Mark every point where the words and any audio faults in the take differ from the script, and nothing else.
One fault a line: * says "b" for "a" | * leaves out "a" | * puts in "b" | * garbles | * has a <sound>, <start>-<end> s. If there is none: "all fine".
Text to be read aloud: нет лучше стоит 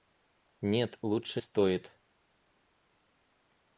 all fine